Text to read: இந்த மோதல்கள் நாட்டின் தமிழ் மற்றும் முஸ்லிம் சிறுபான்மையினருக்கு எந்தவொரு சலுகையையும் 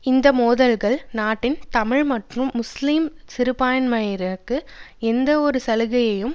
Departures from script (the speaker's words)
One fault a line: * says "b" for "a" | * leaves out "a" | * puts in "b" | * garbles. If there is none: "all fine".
all fine